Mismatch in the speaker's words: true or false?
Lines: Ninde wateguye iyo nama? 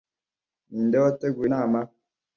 true